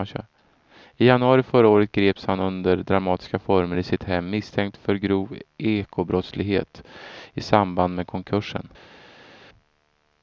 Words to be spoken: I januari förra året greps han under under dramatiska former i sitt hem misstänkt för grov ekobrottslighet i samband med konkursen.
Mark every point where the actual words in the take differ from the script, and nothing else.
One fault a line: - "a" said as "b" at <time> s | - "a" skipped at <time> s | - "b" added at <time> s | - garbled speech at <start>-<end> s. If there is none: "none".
- "under" skipped at 2.8 s